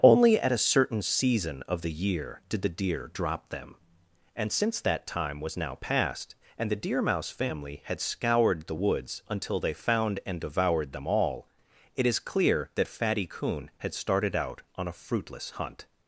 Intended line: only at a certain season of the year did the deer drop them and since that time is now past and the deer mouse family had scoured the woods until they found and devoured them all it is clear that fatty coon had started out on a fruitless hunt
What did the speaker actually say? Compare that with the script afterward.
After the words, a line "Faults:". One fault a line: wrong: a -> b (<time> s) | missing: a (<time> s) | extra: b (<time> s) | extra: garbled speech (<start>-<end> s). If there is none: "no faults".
only at a certain season of the year did the deer drop them and since that time was now past and the deer mouse family had scoured the woods until they found and devoured them all it is clear that fatty coon had started out on a fruitless hunt
Faults:
wrong: is -> was (5.4 s)